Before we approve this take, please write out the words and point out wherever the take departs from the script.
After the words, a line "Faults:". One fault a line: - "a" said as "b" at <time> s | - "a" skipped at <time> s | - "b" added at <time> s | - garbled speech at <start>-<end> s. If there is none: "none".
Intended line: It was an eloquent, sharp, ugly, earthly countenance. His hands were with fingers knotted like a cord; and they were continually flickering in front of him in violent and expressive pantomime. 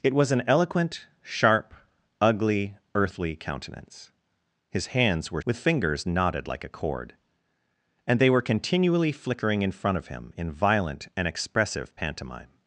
It was an eloquent, sharp, ugly, earthly countenance. His hands were with fingers knotted like a cord; and they were continually flickering in front of him in violent and expressive pantomime.
Faults:
none